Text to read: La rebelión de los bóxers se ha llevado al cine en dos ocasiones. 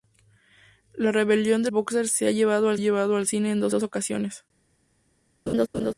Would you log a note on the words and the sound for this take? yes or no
yes